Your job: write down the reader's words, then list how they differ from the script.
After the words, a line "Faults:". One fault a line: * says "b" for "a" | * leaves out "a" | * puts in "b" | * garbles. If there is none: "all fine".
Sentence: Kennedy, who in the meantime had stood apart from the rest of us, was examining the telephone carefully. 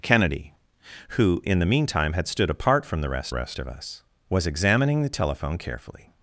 Kennedy, who in the meantime had stood apart from the rest rest of us, was examining the telephone carefully.
Faults:
* puts in "rest"